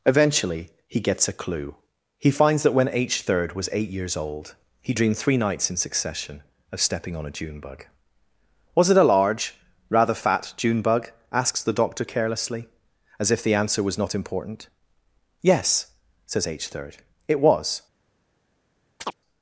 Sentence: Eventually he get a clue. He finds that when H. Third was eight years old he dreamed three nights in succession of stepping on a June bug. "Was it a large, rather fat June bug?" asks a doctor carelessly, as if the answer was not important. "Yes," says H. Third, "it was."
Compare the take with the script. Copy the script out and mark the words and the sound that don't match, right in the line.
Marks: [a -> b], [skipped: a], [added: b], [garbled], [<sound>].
Eventually he [get -> gets] a clue. He finds that when H. Third was eight years old he dreamed three nights in succession of stepping on a June bug. "Was it a large, rather fat June bug?" asks [a -> the] doctor carelessly, as if the answer was not important. "Yes," says H. Third, "it was." [chirp]